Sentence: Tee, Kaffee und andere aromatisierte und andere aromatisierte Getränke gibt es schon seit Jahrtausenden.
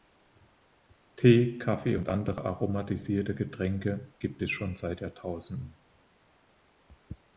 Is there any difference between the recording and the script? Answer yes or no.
yes